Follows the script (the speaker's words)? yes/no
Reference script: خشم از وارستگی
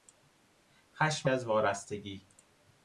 yes